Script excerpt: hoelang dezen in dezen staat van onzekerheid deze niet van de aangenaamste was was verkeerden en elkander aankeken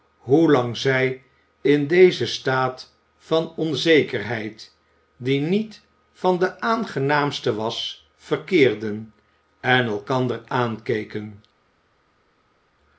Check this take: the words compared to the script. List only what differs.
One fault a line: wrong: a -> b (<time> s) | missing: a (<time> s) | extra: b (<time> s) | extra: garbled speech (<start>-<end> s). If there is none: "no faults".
wrong: dezen -> zij (0.8 s)
wrong: deze -> die (5.2 s)
missing: was (8.1 s)